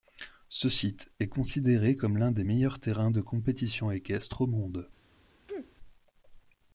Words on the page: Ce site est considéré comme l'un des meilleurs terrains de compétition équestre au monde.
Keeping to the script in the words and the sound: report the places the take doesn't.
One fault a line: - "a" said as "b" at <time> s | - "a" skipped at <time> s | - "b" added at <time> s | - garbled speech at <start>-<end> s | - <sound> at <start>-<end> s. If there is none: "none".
- sneeze at 5.5-5.8 s